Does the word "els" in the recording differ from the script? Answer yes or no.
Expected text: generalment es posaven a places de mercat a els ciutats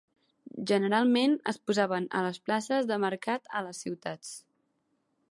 yes